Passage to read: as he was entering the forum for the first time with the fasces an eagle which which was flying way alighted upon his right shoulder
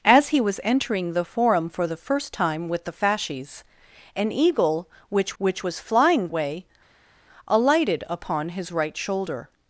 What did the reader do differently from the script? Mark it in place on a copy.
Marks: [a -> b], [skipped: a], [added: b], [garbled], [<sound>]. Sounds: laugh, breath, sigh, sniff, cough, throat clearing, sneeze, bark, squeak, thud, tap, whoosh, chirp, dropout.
as he was entering the forum for the first time with the fasces an eagle which which was flying way alighted upon his right shoulder